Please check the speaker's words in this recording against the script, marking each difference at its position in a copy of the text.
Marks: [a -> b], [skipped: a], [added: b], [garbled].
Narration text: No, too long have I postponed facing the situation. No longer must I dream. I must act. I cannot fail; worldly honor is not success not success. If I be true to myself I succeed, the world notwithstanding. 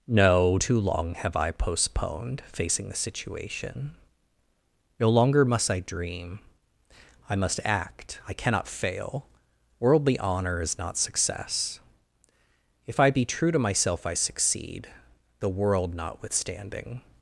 No, too long have I postponed facing the situation. No longer must I dream. I must act. I cannot fail; worldly honor is not success [skipped: not success.] If I be true to myself I succeed, the world notwithstanding.